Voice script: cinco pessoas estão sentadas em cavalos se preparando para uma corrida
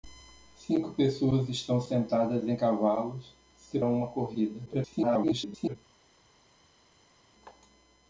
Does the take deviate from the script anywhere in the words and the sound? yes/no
yes